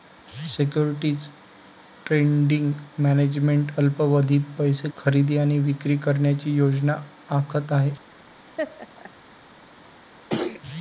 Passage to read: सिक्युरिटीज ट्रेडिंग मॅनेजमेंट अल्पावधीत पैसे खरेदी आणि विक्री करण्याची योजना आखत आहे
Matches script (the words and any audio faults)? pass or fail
fail